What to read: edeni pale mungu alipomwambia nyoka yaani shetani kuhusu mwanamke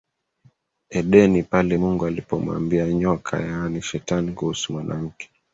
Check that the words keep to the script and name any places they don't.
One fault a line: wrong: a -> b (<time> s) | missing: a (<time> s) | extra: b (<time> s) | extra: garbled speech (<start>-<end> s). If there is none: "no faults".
no faults